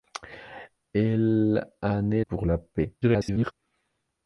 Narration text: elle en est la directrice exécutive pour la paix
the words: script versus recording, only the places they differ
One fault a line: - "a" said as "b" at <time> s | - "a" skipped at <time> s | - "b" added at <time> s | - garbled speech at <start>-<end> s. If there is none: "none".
- "la directrice exécutive" skipped at 2.2 s
- garbled speech at 3.0-3.5 s